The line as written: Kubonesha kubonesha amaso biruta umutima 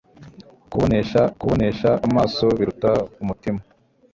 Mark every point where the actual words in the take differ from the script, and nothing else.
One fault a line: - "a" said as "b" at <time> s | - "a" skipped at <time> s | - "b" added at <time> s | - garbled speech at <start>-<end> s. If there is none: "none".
none